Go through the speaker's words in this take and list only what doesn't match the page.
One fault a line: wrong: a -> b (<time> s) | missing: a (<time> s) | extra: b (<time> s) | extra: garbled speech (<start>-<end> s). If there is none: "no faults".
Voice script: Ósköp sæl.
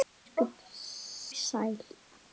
no faults